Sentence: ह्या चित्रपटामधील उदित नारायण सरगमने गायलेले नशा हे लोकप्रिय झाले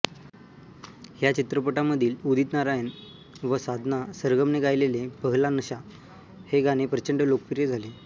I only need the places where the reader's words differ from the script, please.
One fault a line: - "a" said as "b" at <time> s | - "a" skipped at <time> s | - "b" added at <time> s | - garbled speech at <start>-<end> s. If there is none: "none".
- "व साधना" added at 3.4 s
- "पहला" added at 5.2 s
- "गाणे प्रचंड" added at 6.6 s